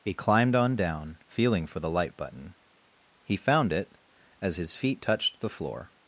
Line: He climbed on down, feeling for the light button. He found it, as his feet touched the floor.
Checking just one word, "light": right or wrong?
right